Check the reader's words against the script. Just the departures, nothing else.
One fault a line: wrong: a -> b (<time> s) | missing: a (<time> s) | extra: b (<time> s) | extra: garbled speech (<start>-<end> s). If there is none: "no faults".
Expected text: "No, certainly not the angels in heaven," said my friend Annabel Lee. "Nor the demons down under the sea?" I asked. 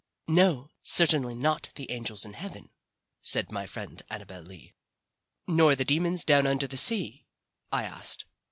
no faults